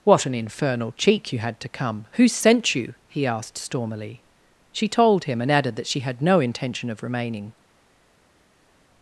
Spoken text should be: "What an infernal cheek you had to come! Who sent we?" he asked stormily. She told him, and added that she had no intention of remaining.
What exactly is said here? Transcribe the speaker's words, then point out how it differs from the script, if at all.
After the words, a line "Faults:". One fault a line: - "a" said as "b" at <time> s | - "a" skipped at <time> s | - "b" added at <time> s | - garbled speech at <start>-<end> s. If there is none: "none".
"What an infernal cheek you had to come! Who sent you?" he asked stormily. She told him, and added that she had no intention of remaining.
Faults:
- "we" said as "you" at 2.8 s